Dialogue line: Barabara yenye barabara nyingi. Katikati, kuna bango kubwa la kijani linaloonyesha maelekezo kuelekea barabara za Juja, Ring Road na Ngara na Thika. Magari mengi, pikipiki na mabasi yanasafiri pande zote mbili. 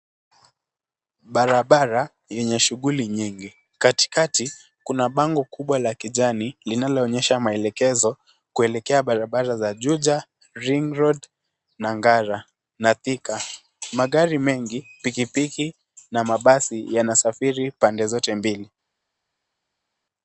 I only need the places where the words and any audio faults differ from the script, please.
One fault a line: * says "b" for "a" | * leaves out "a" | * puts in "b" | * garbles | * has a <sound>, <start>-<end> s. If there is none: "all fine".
* says "shughuli" for "barabara"